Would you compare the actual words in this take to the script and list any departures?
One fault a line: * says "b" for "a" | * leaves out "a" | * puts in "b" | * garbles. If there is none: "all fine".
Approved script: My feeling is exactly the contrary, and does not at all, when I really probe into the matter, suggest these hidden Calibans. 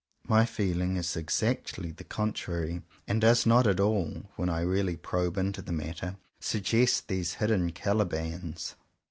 all fine